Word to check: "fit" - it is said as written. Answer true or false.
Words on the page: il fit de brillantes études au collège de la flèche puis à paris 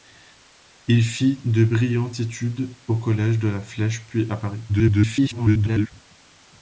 true